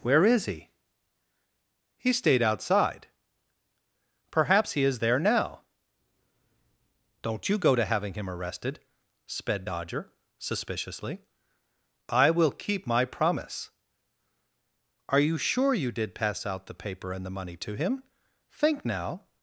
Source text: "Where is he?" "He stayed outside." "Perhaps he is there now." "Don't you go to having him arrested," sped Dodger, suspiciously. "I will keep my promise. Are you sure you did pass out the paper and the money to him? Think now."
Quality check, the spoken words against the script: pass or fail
pass